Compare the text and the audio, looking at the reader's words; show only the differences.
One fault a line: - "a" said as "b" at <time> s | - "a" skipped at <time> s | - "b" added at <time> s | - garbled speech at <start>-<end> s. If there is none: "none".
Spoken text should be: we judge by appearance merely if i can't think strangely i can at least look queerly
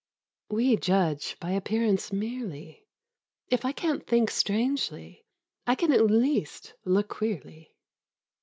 none